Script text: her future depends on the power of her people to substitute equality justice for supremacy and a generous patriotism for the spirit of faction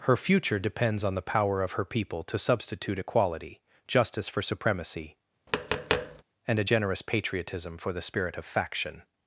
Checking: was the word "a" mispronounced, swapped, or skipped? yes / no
no